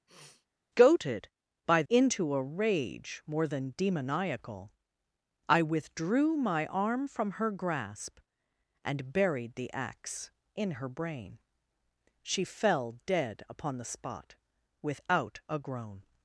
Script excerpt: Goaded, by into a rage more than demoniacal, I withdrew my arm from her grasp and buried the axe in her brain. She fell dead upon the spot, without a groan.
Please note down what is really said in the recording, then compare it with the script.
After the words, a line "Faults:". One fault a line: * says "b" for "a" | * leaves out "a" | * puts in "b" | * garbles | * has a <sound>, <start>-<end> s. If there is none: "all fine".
Goaded, by into a rage more than demoniacal, I withdrew my arm from her grasp and buried the axe in her brain. She fell dead upon the spot, without a groan.
Faults:
* has a sniff, 0.1-0.5 s